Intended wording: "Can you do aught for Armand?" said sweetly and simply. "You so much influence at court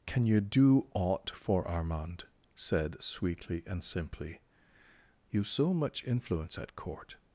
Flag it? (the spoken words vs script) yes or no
no